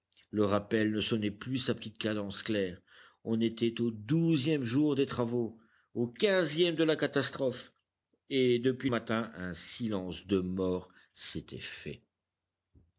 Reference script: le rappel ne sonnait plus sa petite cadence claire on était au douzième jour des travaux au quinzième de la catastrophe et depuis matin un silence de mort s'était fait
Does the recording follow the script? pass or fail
pass